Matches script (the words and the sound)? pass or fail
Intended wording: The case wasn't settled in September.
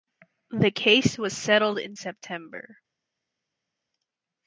fail